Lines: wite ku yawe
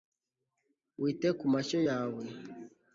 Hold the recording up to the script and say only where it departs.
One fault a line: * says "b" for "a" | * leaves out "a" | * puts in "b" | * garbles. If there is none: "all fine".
* puts in "mashyo"